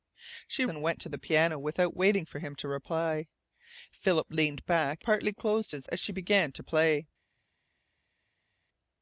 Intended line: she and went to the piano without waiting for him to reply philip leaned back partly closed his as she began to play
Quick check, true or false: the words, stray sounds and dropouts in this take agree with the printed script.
true